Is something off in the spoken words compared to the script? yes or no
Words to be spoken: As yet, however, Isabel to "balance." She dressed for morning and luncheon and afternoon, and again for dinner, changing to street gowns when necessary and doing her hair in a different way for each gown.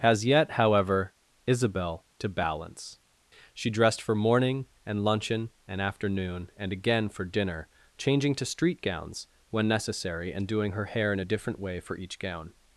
no